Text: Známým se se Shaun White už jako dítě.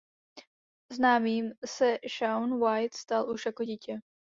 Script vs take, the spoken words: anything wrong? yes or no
yes